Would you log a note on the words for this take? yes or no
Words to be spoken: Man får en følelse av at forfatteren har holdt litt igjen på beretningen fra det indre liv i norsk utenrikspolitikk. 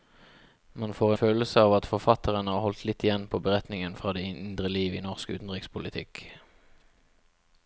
yes